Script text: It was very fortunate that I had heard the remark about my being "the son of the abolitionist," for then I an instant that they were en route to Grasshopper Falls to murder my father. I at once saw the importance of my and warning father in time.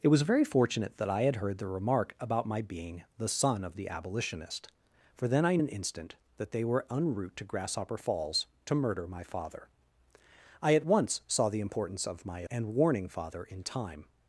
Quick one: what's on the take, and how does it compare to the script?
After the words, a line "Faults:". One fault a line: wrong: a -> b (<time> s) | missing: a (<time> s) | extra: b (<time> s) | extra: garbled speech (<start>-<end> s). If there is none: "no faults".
It was very fortunate that I had heard the remark about my being "the son of the abolitionist," for then I an instant that they were en route to Grasshopper Falls to murder my father. I at once saw the importance of my and warning father in time.
Faults:
no faults